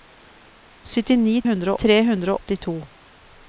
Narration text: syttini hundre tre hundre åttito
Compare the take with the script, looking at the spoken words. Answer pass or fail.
pass